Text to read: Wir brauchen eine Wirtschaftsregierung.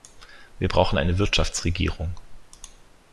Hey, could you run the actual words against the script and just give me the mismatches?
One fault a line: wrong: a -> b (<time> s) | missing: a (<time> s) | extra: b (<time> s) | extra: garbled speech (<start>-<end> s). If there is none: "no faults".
no faults